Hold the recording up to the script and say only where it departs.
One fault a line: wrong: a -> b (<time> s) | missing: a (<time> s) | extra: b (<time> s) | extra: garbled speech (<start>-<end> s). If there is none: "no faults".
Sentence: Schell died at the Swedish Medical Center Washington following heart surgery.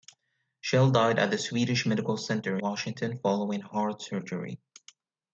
no faults